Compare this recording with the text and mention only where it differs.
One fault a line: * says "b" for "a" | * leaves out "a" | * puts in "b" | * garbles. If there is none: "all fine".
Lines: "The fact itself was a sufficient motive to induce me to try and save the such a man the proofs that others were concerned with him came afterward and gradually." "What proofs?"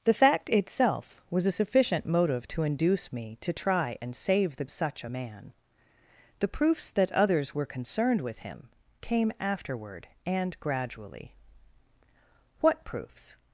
all fine